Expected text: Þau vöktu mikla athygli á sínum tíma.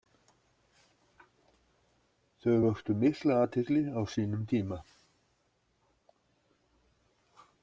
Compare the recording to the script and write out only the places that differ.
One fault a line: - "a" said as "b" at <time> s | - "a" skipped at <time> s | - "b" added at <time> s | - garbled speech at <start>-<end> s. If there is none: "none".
none